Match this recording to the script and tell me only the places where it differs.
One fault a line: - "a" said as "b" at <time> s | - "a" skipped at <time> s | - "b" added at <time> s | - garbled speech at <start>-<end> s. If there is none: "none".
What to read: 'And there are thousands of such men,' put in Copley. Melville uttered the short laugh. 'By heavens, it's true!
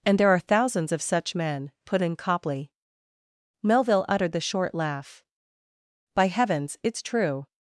none